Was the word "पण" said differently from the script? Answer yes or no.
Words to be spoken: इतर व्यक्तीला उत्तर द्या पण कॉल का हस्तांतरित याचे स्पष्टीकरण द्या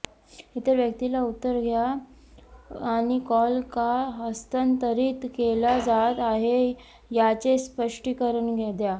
yes